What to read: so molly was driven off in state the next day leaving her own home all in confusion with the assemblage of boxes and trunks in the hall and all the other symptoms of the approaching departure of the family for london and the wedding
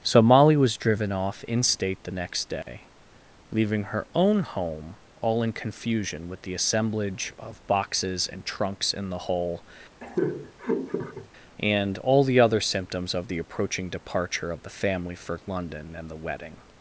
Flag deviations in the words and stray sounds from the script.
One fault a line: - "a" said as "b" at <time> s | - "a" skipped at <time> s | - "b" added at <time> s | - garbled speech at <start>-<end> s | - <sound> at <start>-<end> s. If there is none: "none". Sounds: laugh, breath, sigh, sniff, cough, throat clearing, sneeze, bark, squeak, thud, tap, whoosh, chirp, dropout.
- dropout at 2.6-2.7 s
- "hall" said as "hole" at 9.2 s
- laugh at 10.0-11.3 s